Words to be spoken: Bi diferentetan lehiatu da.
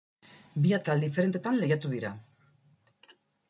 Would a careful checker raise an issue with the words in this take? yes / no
yes